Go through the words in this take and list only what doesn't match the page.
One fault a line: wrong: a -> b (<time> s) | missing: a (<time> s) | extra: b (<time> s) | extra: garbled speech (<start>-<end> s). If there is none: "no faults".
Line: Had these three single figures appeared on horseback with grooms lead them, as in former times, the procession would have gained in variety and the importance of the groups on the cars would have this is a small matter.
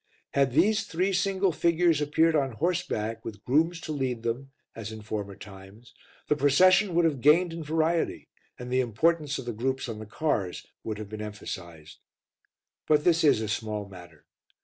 extra: to (3.8 s)
extra: been emphasized But (11.1 s)